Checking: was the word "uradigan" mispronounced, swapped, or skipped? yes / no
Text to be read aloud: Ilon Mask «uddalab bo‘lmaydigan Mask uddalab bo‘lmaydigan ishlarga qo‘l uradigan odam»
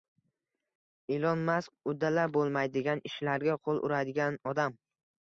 no